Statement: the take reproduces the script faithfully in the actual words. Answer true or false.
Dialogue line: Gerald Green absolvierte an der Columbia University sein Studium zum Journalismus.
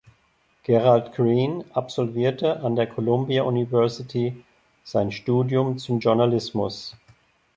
true